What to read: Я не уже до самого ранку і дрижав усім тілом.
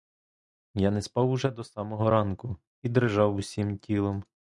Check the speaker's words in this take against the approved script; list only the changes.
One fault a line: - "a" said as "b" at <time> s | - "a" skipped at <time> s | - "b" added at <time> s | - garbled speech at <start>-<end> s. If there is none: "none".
- "спав" added at 1.0 s